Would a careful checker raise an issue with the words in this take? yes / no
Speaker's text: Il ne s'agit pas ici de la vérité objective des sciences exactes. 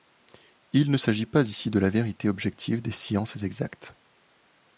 no